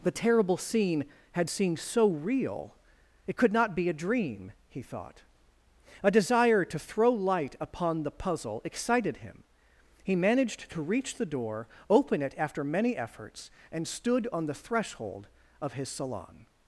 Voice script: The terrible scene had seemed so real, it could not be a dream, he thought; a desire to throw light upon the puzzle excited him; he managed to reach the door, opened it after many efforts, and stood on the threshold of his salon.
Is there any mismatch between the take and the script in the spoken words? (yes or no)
yes